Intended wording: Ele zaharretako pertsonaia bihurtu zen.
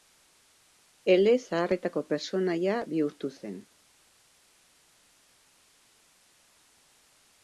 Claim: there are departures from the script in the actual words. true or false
false